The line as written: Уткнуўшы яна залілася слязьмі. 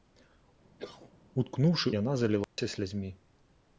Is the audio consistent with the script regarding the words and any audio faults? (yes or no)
no